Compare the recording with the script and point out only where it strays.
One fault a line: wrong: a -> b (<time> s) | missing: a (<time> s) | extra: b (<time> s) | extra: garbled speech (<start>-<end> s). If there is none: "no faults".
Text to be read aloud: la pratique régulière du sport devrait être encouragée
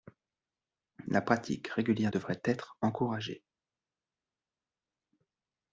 missing: du sport (2.1 s)